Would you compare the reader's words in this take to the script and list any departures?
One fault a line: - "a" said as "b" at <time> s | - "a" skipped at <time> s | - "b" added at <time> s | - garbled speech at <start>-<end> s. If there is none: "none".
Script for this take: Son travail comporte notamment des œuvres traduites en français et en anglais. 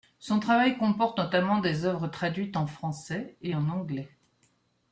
none